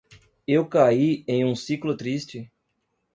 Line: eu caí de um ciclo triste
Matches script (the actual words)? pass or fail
fail